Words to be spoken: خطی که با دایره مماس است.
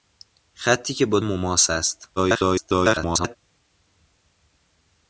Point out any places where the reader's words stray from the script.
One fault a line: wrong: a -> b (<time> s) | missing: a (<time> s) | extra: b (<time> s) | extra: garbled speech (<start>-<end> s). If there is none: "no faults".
missing: دایره (1.2 s)
extra: garbled speech (2.2-3.4 s)